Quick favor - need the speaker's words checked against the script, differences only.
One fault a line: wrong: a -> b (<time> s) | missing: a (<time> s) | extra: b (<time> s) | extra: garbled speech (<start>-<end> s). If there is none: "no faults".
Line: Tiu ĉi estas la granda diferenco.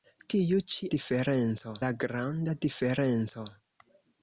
wrong: estas -> diferenco (0.9 s)